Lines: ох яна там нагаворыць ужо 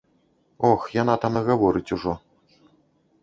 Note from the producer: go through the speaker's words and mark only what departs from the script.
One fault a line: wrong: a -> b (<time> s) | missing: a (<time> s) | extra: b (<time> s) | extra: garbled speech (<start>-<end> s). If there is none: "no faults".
no faults